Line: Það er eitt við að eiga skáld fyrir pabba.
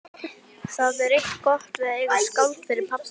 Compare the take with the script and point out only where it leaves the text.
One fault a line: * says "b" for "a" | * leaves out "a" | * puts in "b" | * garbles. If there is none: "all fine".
* puts in "gott"